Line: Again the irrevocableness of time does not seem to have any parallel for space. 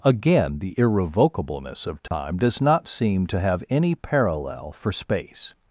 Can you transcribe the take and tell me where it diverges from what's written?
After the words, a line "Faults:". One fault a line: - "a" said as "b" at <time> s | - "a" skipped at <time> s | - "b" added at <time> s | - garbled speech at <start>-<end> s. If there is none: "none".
Again the irrevocableness of time does not seem to have any parallel for space.
Faults:
none